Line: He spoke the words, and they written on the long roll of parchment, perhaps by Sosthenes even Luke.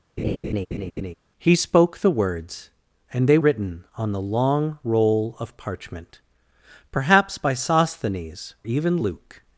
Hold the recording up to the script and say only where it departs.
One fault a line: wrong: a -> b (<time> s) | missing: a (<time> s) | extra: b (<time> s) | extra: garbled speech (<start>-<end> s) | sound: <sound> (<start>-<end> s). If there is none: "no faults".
sound: laugh (0.2-1.1 s)